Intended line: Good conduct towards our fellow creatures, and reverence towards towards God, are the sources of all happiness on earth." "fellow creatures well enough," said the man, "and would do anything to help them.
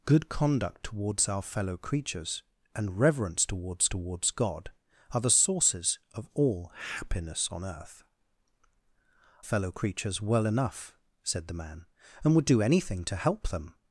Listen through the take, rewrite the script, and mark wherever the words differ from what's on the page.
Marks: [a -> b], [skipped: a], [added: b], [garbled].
Good conduct towards our fellow creatures, and reverence towards towards God, are the sources of all happiness on earth." "fellow creatures well enough," said the man, "and would do anything to help them.